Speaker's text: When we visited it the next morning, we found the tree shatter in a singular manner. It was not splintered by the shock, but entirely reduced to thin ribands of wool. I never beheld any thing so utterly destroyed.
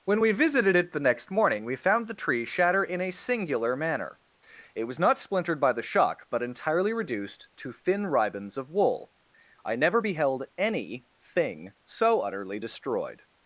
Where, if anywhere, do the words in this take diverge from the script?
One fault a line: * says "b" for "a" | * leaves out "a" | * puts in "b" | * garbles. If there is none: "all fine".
all fine